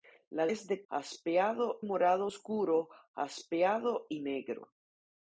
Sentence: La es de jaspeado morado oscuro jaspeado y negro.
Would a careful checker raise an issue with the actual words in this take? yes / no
no